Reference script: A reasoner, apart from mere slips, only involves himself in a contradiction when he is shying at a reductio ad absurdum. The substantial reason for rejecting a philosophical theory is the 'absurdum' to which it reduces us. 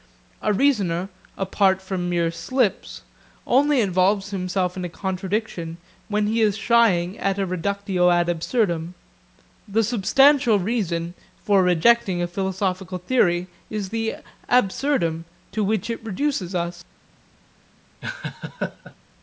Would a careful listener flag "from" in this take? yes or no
no